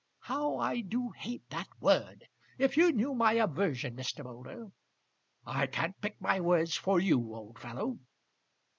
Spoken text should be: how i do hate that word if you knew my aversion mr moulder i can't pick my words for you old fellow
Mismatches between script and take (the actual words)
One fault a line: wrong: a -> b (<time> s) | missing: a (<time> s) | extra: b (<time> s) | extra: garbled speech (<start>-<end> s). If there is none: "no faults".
no faults